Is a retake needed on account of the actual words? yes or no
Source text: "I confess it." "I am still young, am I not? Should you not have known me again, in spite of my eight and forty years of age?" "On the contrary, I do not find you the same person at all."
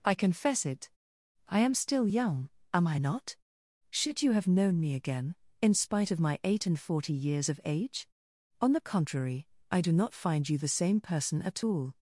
yes